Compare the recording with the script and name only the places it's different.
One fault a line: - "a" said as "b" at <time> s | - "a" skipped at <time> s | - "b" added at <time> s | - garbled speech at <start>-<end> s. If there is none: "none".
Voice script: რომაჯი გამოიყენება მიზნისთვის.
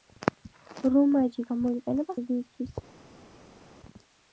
none